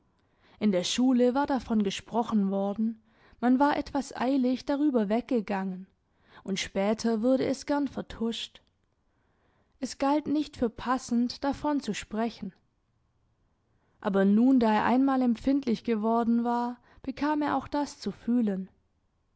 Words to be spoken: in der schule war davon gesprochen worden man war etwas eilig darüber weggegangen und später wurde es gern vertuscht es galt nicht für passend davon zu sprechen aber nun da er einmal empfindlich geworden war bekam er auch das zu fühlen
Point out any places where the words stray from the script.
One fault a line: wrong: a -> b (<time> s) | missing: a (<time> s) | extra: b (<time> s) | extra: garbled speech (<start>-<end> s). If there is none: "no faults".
no faults